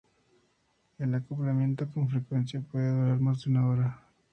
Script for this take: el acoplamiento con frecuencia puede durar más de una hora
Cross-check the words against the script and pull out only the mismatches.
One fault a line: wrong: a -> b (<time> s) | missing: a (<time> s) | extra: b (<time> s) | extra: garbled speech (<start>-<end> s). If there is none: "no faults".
no faults